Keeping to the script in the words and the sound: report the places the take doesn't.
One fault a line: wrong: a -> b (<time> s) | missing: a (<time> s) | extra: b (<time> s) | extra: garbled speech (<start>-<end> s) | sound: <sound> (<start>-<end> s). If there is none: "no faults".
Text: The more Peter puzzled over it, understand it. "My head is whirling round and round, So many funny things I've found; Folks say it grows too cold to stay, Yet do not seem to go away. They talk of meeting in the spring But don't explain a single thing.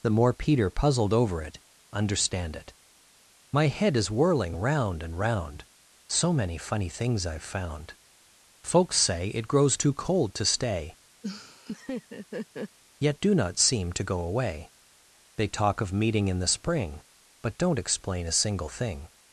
sound: laugh (11.2-12.8 s)